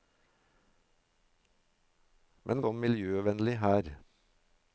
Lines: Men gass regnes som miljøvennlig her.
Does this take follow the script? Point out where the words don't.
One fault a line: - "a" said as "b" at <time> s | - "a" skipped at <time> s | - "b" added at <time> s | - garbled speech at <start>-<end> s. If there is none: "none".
- "gass regnes" skipped at 2.6 s